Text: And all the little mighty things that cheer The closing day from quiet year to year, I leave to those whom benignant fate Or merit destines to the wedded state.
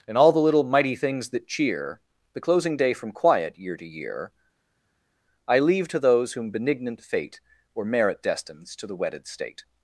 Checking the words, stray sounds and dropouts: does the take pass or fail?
pass